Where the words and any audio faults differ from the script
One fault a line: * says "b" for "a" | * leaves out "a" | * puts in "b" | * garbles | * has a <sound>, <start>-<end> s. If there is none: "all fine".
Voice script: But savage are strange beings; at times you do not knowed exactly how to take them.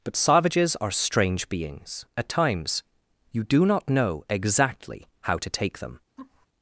* says "savages" for "savage"
* says "know" for "knowed"
* has a laugh, 6.2-6.5 s